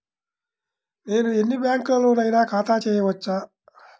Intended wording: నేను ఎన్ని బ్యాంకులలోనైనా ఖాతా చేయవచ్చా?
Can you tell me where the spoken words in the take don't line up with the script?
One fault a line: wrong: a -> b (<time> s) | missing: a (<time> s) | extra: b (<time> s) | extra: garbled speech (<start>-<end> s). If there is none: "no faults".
no faults